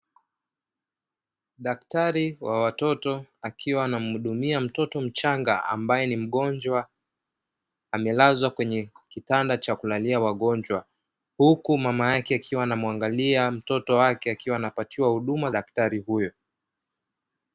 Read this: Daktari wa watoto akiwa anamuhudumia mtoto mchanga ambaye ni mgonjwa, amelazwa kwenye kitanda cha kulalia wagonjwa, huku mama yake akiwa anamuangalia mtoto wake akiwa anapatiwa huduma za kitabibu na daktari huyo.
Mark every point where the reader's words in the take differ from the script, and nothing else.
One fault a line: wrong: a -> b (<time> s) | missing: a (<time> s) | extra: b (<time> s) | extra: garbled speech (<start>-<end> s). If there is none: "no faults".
missing: za kitabibu na (15.5 s)